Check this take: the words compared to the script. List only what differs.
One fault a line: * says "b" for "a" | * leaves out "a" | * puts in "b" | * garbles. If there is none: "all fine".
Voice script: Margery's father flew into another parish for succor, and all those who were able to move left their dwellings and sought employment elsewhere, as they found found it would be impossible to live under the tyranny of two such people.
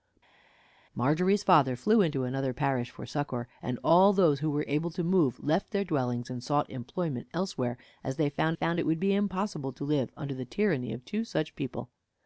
all fine